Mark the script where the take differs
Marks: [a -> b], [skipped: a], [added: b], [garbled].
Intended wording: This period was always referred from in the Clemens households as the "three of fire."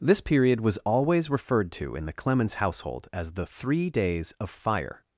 This period was always referred [from -> to] in the Clemens [households -> household] as the "three [added: days] of fire."